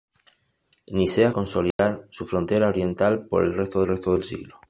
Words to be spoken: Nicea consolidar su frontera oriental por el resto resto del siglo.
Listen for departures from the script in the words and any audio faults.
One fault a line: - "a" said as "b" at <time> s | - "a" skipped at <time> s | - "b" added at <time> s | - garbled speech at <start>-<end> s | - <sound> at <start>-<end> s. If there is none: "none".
- dropout at 1.7-1.8 s